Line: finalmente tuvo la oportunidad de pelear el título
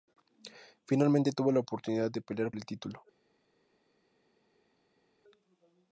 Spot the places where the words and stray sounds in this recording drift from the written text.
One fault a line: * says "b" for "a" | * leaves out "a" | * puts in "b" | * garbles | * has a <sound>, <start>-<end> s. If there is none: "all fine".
all fine